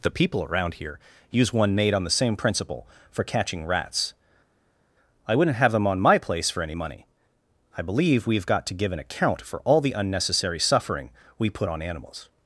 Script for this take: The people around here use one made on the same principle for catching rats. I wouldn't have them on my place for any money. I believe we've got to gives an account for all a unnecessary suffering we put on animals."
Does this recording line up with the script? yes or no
no